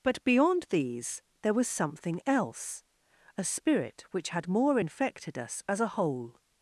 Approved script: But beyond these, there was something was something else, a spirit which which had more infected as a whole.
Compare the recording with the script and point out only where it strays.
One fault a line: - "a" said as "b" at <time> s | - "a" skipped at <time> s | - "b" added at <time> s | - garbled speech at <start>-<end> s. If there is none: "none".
- "was something" skipped at 2.2 s
- "which" skipped at 4.3 s
- "us" added at 5.4 s